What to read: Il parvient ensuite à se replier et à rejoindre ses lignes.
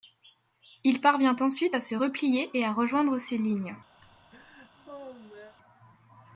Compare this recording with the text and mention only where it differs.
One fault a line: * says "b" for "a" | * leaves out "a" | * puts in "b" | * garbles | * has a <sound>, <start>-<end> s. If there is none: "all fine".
* has a laugh, 4.0-5.5 s